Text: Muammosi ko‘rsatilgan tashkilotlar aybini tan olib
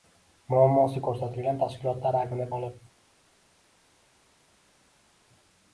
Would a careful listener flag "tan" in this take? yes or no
yes